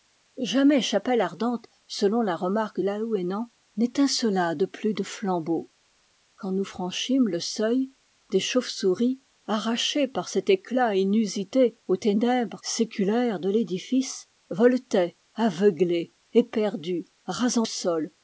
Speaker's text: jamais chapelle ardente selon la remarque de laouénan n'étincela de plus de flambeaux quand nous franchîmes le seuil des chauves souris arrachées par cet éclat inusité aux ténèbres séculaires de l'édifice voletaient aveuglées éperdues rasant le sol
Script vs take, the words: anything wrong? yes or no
yes